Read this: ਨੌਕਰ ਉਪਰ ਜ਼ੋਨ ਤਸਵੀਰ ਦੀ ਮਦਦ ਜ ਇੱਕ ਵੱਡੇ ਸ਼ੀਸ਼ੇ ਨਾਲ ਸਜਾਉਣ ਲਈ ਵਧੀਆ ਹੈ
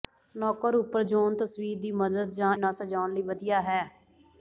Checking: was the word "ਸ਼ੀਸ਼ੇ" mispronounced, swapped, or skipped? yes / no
yes